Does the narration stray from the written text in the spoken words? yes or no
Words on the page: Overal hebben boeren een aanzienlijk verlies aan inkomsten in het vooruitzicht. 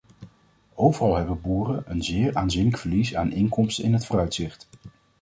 yes